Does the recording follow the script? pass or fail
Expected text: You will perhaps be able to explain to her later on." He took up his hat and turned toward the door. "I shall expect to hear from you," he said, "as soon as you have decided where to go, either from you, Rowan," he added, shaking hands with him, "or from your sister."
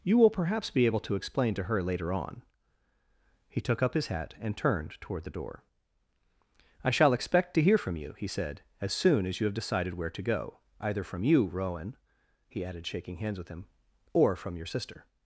pass